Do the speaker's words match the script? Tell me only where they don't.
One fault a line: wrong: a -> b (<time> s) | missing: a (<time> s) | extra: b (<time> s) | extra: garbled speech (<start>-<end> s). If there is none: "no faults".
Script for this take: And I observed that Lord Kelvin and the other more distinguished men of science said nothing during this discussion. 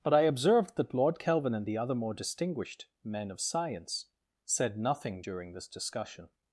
wrong: And -> But (0.0 s)